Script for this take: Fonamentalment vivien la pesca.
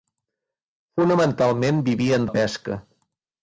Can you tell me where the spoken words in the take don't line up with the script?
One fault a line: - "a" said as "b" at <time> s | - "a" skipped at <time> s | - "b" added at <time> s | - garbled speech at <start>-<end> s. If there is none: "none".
none